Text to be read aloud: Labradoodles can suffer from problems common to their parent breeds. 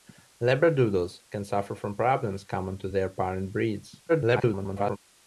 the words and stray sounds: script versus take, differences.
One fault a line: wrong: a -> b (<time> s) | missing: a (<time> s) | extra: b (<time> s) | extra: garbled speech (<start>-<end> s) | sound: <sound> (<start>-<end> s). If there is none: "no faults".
extra: garbled speech (4.1-5.0 s)